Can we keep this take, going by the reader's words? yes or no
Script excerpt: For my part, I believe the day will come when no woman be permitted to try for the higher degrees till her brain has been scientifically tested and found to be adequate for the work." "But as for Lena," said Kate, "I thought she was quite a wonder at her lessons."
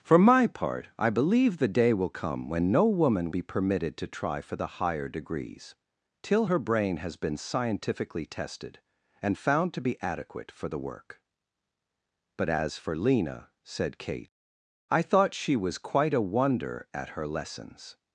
yes